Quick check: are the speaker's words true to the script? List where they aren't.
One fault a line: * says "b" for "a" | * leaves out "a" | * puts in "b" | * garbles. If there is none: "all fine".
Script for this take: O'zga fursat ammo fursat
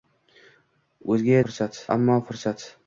all fine